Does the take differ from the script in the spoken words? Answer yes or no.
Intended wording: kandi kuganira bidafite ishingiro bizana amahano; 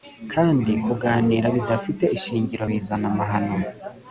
no